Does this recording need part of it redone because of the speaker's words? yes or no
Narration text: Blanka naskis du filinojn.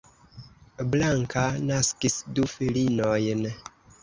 no